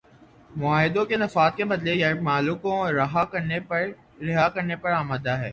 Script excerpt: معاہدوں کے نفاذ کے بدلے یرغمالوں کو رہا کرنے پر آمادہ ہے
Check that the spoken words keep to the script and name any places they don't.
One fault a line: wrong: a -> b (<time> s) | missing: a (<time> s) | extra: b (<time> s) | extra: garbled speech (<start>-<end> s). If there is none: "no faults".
no faults